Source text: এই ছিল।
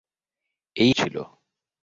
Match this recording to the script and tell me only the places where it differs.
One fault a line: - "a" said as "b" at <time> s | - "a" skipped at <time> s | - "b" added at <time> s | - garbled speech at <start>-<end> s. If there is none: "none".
none